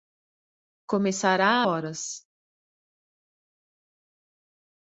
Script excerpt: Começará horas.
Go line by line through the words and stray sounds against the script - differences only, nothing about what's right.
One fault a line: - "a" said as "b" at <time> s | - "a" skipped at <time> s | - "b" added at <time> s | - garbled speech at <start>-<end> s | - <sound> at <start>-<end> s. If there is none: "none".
none